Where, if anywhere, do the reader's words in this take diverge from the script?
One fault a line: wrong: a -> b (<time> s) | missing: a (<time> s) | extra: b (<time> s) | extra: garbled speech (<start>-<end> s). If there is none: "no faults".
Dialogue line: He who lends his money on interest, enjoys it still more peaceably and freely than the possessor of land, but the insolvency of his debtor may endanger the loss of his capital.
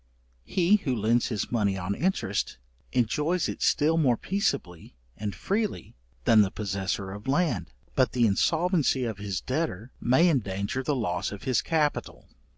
no faults